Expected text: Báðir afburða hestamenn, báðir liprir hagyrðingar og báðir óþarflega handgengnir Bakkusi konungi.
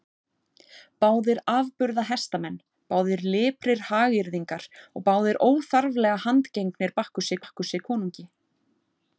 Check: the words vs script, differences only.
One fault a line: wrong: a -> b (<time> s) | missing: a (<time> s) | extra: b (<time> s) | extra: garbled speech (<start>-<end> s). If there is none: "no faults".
extra: Bakkusi (7.4 s)